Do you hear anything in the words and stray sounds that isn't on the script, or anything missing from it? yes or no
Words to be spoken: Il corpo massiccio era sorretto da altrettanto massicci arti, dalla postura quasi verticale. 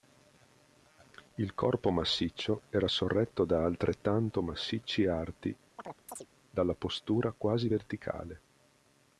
yes